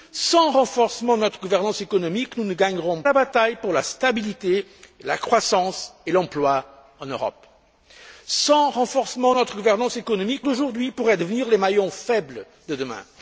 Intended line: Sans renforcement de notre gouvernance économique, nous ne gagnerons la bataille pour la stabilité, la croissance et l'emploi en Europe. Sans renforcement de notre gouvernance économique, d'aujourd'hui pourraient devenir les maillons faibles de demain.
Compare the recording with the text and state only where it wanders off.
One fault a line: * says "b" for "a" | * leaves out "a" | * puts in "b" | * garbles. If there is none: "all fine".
all fine